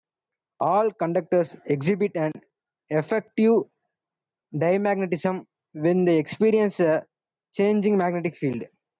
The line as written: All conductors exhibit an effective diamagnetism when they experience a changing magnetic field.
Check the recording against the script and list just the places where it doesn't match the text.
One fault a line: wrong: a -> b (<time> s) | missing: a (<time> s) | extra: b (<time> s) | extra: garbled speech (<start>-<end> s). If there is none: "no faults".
no faults